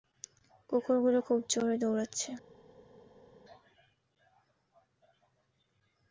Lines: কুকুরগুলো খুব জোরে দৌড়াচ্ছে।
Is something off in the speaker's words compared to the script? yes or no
no